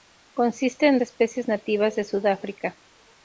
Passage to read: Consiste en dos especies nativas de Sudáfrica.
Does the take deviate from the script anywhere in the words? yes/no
yes